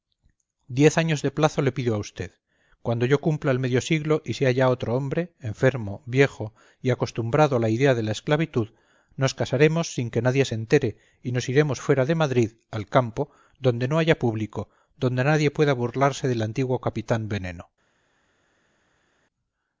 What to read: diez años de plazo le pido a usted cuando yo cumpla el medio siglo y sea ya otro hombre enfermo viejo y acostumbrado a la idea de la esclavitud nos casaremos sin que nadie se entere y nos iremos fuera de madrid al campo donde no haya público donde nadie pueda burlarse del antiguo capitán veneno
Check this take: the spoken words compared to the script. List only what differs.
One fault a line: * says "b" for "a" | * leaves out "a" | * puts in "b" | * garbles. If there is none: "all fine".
all fine